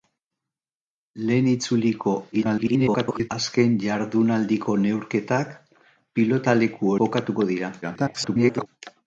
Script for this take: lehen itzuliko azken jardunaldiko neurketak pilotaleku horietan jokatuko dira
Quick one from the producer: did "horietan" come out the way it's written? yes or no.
no